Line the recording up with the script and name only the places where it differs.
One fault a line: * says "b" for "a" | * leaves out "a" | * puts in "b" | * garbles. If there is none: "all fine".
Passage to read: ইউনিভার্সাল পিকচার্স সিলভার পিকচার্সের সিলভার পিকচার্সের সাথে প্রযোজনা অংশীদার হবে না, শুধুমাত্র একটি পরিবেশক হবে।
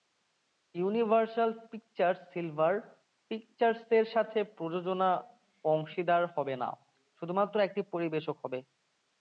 * leaves out "সিলভার পিকচার্সের"